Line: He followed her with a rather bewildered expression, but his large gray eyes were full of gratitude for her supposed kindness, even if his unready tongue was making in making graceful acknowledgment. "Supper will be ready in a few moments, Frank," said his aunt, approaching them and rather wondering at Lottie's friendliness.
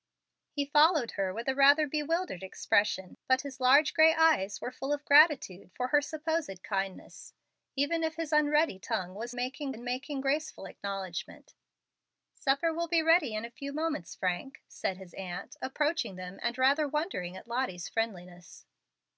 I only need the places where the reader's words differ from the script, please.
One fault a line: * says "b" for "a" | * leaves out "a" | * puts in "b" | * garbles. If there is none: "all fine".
all fine